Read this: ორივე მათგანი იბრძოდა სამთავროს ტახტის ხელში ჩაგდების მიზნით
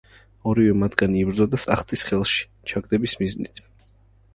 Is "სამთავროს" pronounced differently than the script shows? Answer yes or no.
yes